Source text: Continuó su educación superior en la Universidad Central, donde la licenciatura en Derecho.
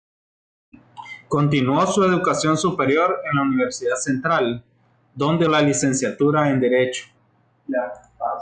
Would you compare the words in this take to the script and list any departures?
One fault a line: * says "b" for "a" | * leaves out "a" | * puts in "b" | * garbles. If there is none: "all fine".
all fine